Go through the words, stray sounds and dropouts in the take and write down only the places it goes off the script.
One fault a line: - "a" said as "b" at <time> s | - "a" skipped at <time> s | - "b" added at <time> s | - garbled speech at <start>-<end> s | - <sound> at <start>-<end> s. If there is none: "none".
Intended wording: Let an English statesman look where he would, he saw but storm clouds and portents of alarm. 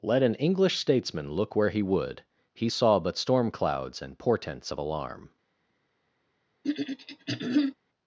- throat clearing at 6.6-7.8 s